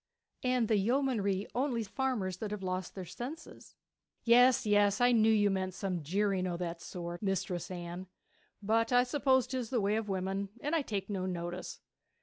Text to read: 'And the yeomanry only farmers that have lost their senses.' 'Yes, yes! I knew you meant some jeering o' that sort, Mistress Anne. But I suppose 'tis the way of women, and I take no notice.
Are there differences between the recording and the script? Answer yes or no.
no